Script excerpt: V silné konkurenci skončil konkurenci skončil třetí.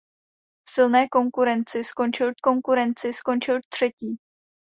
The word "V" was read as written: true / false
true